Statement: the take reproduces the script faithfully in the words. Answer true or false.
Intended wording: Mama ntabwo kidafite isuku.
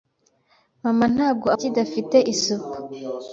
true